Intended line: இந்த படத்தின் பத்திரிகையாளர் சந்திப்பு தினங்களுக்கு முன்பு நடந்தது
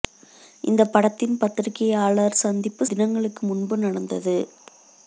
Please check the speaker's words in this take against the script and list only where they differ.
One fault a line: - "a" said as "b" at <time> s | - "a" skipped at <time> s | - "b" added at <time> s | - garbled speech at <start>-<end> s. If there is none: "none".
none